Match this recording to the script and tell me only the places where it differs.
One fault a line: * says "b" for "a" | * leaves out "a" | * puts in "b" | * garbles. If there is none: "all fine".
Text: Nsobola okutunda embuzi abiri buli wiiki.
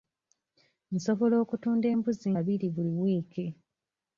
all fine